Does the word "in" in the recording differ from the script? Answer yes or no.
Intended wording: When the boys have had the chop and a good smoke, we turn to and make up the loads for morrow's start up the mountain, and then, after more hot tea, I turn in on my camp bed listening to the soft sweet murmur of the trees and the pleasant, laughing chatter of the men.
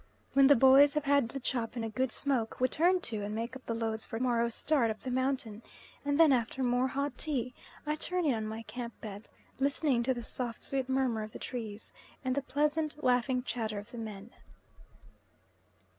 no